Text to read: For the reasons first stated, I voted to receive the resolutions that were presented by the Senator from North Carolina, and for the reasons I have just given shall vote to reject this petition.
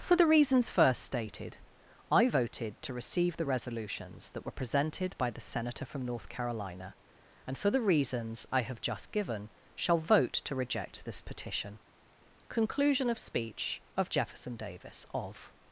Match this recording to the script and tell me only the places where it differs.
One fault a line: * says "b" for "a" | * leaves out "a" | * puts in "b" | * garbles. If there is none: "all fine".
* puts in "Conclusion of speech of Jefferson Davis of"